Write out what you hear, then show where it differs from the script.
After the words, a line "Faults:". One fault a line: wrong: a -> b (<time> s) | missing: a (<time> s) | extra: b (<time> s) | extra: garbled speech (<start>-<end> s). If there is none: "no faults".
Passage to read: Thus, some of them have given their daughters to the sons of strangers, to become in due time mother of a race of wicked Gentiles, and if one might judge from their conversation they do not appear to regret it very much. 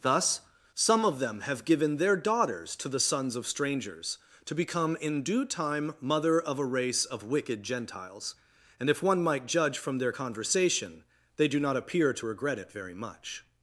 Thus, some of them have given their daughters to the sons of strangers, to become in due time mother of a race of wicked Gentiles, and if one might judge from their conversation they do not appear to regret it very much.
Faults:
no faults